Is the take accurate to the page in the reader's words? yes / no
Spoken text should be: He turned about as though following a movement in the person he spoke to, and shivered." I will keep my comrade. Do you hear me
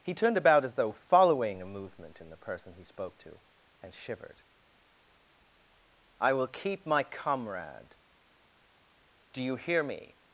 yes